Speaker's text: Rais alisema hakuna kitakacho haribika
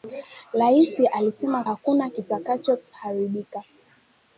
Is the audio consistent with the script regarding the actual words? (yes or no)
yes